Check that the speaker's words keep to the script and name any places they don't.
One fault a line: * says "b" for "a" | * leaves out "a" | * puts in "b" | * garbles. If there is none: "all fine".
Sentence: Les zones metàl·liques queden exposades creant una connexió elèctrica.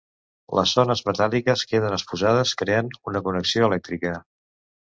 all fine